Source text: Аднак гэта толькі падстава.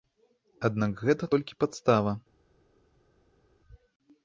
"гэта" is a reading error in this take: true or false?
false